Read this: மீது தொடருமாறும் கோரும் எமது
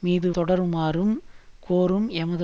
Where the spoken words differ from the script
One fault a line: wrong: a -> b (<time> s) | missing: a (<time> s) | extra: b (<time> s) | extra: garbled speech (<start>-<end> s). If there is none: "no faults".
no faults